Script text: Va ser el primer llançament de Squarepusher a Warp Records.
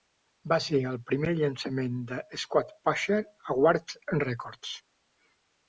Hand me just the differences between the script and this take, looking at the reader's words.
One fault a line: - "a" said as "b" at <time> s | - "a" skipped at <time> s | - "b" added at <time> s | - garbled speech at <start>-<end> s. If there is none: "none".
none